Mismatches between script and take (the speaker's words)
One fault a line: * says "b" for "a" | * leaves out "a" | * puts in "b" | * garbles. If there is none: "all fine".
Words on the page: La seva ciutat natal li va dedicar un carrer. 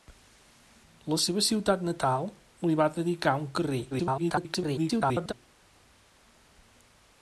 * garbles